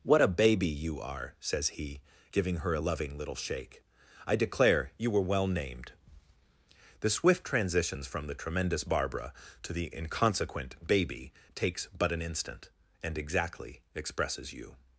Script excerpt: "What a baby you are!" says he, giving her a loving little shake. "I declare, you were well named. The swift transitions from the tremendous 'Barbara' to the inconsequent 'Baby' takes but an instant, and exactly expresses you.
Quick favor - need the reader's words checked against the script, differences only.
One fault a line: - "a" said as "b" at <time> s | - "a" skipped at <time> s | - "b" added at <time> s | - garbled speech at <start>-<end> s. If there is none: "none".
none